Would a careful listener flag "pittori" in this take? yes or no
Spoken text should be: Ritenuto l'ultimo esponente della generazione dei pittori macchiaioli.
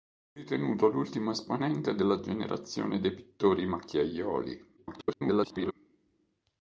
no